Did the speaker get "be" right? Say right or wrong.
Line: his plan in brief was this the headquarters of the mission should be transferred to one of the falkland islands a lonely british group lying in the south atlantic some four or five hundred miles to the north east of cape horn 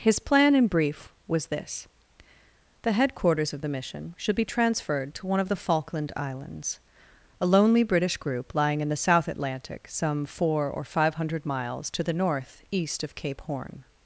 right